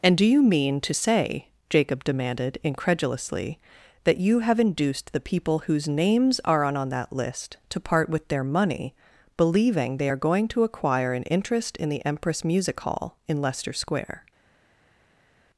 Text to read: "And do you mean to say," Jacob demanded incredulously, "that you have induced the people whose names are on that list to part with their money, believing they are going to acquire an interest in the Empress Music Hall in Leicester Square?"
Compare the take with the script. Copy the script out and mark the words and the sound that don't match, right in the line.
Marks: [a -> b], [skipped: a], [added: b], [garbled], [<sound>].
"And do you mean to say," Jacob demanded incredulously, "that you have induced the people whose names are on [added: on] that list to part with their money, believing they are going to acquire an interest in the Empress Music Hall in Leicester Square?"